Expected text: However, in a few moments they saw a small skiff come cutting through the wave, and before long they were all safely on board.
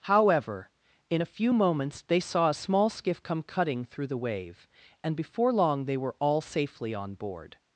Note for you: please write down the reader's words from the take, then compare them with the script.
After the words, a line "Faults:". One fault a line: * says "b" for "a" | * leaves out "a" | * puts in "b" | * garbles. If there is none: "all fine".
However, in a few moments they saw a small skiff come cutting through the wave, and before long they were all safely on board.
Faults:
all fine